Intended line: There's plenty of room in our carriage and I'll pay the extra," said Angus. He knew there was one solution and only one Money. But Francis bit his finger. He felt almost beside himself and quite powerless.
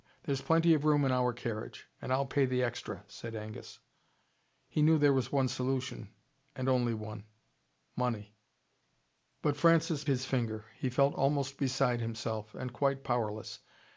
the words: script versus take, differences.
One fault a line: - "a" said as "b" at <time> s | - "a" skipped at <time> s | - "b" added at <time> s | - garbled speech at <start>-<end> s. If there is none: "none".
- "bit" skipped at 10.0 s